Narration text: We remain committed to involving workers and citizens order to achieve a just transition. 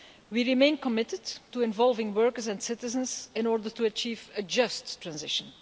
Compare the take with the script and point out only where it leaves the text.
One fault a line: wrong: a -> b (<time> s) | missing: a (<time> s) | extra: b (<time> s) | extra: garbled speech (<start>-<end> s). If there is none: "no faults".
extra: in (3.3 s)